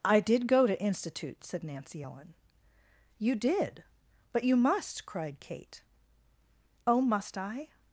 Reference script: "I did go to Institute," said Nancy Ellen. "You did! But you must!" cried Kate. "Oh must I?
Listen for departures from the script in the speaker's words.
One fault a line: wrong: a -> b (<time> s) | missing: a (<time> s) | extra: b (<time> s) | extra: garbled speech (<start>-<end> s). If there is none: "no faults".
no faults